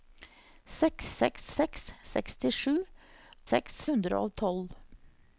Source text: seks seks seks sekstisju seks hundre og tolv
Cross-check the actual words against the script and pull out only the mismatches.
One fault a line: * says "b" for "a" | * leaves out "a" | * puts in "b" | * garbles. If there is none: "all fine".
all fine